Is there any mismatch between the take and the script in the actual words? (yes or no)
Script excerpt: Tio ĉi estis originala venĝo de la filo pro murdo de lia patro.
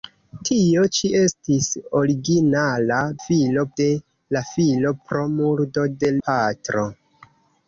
yes